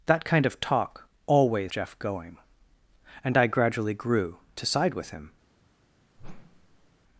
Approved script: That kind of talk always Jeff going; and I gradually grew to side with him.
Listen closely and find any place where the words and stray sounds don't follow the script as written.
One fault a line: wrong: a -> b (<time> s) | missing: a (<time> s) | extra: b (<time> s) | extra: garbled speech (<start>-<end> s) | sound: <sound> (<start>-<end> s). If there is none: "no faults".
sound: whoosh (6.2-6.9 s)